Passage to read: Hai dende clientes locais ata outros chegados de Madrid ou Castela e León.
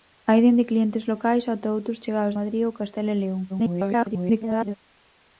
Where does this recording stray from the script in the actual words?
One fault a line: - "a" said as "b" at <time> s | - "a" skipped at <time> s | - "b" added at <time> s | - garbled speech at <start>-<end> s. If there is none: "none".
- "de" skipped at 2.4 s
- garbled speech at 3.5-4.8 s